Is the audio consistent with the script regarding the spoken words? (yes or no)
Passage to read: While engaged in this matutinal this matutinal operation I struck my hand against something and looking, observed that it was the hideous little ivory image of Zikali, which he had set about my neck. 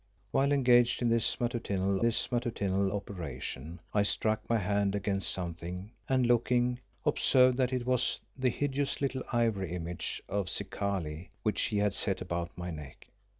yes